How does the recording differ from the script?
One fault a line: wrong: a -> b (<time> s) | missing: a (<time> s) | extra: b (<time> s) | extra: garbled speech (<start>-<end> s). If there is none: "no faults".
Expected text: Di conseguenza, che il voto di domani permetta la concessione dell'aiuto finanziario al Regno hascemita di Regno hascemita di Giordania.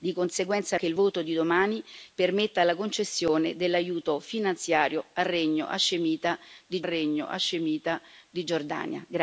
no faults